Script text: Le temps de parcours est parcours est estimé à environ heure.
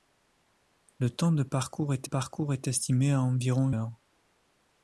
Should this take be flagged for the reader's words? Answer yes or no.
no